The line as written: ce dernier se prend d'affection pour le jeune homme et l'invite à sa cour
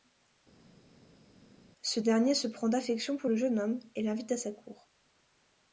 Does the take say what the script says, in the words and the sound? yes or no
yes